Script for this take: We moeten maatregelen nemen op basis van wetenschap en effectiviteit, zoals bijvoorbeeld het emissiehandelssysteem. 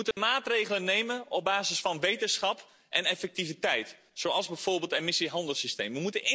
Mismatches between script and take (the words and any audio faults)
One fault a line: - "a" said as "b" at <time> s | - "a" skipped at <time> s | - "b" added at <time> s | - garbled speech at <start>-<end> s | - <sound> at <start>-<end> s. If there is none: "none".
- dropout at 0.1-0.2 s